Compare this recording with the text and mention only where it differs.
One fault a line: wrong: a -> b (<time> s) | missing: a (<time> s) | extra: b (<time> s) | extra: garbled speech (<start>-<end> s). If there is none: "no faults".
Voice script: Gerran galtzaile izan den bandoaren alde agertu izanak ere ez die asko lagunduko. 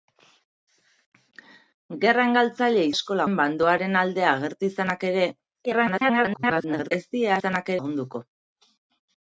wrong: izan -> asko (3.0 s)
extra: garbled speech (5.7-6.9 s)
wrong: asko -> izanak (7.4 s)